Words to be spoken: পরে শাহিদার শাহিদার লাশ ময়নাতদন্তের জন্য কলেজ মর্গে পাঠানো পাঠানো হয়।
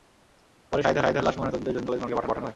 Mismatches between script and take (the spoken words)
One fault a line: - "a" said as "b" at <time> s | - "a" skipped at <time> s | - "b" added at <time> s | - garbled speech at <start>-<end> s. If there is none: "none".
none